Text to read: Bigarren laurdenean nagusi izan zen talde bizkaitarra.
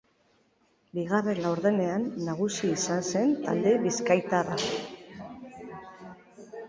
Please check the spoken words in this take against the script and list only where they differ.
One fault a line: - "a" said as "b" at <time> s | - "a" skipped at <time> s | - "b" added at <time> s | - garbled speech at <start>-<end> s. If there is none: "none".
none